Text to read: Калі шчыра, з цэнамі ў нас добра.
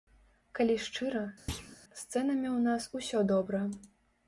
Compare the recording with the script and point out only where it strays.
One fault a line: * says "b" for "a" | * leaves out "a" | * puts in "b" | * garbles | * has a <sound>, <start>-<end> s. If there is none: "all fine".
* has a thud, 1.5-1.8 s
* puts in "усё"